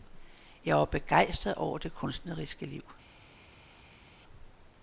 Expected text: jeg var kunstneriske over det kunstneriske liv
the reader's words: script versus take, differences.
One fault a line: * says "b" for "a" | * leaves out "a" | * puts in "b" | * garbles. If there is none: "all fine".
* says "begejstret" for "kunstneriske"